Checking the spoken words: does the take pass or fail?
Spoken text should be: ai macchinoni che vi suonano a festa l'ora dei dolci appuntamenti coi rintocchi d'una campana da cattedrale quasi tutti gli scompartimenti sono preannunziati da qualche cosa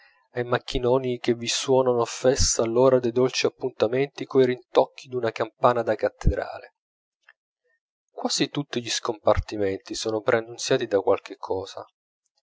pass